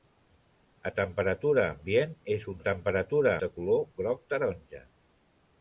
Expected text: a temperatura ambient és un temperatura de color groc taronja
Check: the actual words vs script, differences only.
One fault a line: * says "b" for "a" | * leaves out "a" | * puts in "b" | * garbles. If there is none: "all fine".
all fine